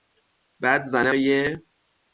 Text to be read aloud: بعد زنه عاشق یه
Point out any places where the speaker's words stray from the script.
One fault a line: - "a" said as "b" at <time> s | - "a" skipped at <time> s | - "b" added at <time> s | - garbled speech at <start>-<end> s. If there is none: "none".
- "عاشق" skipped at 1.1 s